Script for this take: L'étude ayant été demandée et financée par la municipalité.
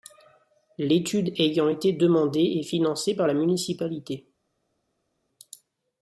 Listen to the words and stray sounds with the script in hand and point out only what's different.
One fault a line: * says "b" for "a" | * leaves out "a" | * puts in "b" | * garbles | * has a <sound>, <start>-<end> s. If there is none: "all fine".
all fine